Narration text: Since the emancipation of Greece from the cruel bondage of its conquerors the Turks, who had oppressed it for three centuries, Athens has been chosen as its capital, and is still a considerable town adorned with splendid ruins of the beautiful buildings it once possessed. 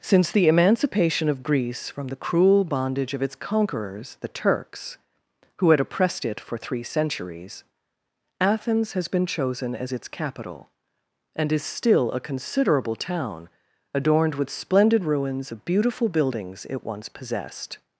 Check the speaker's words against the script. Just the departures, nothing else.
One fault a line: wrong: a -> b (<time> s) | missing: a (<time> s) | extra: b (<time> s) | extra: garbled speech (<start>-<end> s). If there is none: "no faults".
missing: of (15.5 s)